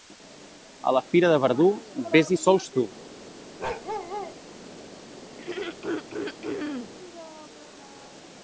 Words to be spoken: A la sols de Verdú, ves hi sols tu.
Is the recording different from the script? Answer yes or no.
yes